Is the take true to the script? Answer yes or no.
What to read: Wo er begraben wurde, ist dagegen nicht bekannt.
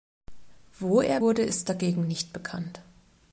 no